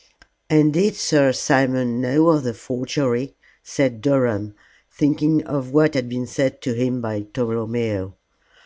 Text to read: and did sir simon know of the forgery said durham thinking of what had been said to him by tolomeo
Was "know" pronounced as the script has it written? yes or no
yes